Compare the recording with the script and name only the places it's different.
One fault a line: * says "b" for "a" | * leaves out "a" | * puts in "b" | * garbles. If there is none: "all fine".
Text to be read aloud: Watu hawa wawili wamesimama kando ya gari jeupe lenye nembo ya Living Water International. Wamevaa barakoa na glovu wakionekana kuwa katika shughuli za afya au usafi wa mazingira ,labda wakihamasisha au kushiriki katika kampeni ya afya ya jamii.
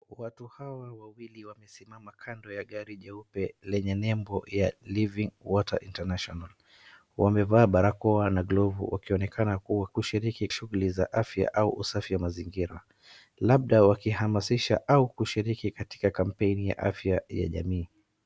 * says "kushiriki" for "katika"